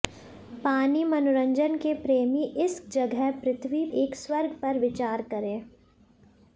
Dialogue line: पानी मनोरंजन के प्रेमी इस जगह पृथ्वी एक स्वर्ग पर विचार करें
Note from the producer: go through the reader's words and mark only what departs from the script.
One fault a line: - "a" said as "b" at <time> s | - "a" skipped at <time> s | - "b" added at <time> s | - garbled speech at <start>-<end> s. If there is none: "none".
none